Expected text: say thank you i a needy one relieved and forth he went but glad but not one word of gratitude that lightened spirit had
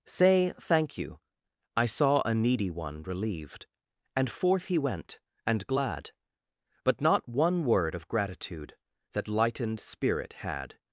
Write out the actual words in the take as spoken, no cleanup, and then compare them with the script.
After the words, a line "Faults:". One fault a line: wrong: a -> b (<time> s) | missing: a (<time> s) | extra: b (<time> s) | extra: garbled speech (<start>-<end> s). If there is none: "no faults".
say thank you i saw a needy one relieved and forth he went and glad but not one word of gratitude that lightened spirit had
Faults:
extra: saw (1.9 s)
wrong: but -> and (5.5 s)